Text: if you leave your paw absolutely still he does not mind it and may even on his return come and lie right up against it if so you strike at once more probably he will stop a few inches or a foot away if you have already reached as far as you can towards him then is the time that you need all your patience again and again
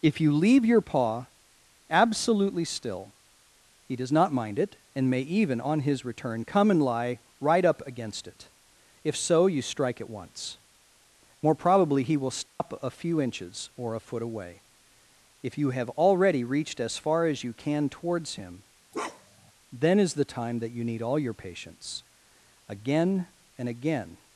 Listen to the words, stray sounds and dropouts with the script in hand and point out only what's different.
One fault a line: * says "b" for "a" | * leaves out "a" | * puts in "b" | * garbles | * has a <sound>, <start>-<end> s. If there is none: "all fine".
* has a dropout, 12.5-12.6 s
* has a bark, 18.9-19.5 s